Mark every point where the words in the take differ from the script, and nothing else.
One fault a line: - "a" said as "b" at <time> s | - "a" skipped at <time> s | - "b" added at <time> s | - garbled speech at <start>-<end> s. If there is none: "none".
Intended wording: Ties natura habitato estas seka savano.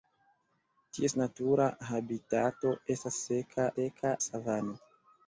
- "seka" added at 3.8 s